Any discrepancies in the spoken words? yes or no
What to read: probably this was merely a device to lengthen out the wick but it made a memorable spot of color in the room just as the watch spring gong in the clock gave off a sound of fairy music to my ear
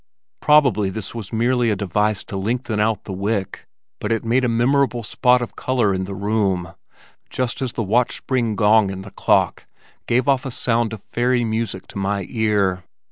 no